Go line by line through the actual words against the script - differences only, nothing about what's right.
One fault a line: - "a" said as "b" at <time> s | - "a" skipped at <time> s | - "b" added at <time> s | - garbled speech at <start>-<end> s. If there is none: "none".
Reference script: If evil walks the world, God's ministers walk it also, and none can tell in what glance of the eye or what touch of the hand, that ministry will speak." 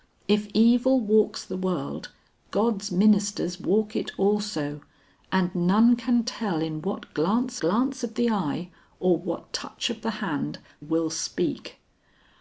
- "glance" added at 7.6 s
- "that ministry" skipped at 10.6 s